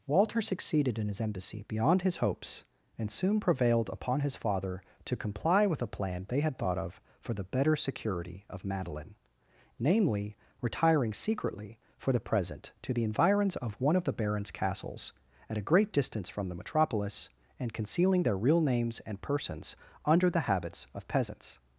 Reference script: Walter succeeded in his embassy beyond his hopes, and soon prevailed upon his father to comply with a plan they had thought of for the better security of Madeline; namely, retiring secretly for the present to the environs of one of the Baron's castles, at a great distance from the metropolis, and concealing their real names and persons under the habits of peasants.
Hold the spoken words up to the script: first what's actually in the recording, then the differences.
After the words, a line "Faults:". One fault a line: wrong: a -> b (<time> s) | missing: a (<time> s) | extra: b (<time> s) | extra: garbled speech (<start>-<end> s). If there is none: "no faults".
Walter succeeded in his embassy beyond his hopes, and soon prevailed upon his father to comply with a plan they had thought of for the better security of Madeline; namely, retiring secretly for the present to the environs of one of the Baron's castles, at a great distance from the metropolis, and concealing their real names and persons under the habits of peasants.
Faults:
no faults